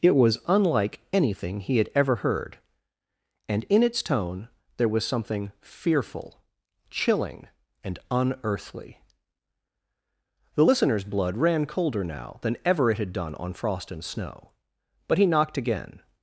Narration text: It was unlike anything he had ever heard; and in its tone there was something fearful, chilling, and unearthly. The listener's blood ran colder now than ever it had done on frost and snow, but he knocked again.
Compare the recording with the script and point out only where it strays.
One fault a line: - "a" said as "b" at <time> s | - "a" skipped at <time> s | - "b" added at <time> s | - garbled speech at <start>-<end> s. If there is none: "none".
none